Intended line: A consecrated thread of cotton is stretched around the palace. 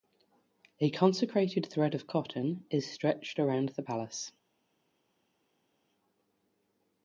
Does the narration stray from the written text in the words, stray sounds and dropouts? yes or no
no